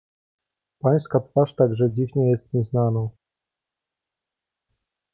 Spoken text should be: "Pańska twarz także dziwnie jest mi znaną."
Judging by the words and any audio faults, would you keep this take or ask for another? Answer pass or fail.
pass